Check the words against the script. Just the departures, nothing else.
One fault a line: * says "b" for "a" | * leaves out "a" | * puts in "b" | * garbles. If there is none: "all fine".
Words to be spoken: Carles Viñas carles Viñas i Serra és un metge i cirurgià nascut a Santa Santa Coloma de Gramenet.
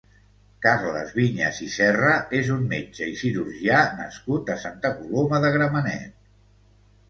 * leaves out "carles Viñas"
* leaves out "Santa"